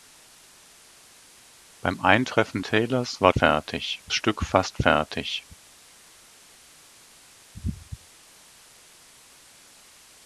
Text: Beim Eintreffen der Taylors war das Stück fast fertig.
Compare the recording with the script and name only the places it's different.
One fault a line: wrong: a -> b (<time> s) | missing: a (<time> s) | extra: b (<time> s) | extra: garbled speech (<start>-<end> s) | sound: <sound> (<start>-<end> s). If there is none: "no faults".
missing: der (2.6 s)
wrong: das -> fertig (3.3 s)